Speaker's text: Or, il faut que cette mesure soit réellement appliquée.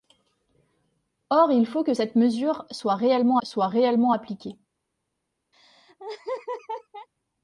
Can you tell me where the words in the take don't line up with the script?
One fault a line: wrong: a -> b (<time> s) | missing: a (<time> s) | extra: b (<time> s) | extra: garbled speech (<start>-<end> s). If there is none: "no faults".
extra: soit réellement (3.4 s)